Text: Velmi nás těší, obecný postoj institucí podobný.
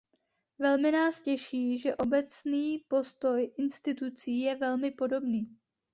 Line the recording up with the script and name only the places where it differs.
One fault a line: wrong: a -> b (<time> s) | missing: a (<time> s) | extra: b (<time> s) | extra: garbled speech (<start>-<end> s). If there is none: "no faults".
extra: že (1.8 s)
extra: je velmi (4.4 s)